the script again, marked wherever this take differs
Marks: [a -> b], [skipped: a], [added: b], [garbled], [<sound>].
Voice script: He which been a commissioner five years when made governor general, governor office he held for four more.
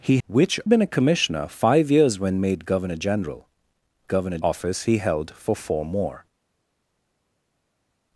He which been a commissioner five years when made governor general, governor office he held for four more.